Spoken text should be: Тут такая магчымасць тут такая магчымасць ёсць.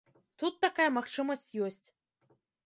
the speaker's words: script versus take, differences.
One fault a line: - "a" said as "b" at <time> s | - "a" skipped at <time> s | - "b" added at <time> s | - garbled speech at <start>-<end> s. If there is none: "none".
- "тут такая магчымасць" skipped at 1.4 s